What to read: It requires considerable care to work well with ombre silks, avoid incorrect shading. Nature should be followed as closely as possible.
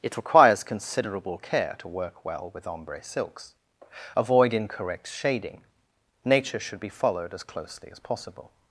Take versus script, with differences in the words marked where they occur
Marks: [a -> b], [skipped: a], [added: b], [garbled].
It requires considerable care to work well with ombre silks, avoid incorrect shading. Nature should be followed as closely as possible.